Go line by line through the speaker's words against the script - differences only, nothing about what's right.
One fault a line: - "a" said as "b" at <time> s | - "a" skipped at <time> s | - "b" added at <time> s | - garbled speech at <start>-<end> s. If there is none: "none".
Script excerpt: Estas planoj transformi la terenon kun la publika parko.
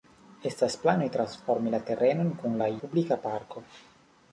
none